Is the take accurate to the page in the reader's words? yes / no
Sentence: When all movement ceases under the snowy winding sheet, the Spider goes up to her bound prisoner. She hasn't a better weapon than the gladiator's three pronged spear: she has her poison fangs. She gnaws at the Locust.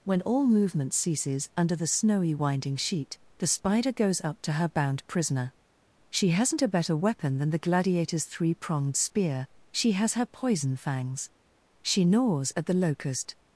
yes